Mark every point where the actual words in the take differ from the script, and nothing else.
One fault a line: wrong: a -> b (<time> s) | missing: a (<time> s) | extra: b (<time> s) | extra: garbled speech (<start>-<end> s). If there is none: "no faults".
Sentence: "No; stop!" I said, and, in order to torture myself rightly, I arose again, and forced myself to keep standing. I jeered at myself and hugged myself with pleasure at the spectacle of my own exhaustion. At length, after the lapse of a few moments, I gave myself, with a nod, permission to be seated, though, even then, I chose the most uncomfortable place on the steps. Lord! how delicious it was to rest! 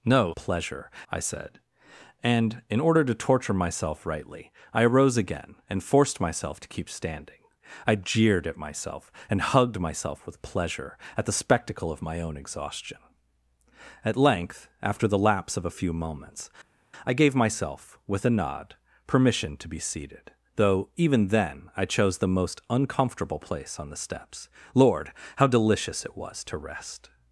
wrong: stop -> pleasure (0.3 s)